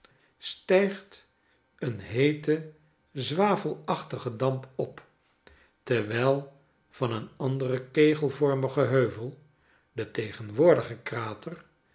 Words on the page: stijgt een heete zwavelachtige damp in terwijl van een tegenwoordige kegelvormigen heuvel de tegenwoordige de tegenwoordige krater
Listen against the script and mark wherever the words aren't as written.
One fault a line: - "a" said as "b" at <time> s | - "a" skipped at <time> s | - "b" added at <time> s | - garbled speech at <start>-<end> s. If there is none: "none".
- "in" said as "op" at 4.8 s
- "tegenwoordige" said as "anderen" at 7.4 s
- "de tegenwoordige" skipped at 10.9 s